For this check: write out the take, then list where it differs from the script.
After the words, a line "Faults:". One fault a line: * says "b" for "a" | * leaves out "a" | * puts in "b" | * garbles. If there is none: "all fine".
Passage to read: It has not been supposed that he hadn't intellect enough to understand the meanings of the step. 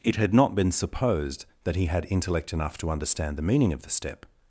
It had not been supposed that he had intellect enough to understand the meaning of the step.
Faults:
* says "had" for "has"
* says "had" for "hadn't"
* says "meaning" for "meanings"